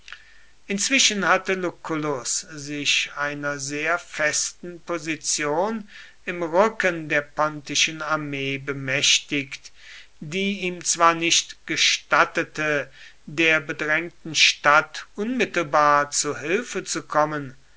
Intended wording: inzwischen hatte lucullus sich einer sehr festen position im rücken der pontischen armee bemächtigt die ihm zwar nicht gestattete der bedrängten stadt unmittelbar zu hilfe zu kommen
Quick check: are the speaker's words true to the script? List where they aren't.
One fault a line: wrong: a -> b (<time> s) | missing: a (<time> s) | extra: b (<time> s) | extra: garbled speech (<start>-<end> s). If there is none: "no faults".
no faults